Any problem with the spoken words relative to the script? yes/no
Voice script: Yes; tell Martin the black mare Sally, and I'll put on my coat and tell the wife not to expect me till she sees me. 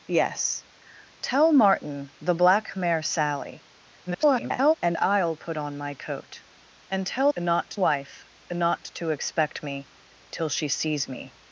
yes